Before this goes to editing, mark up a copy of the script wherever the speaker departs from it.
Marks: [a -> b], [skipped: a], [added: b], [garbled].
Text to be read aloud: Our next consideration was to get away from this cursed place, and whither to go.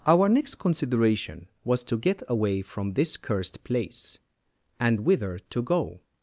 Our next consideration was to get away from this cursed place, and whither to go.